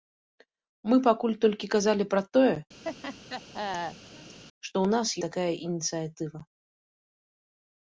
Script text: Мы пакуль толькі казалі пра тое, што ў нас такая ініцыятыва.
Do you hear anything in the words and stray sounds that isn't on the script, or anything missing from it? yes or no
yes